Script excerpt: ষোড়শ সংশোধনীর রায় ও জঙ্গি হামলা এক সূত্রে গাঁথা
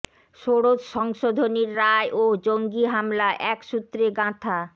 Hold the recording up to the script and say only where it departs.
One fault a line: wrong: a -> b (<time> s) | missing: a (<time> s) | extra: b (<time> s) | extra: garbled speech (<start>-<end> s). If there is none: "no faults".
no faults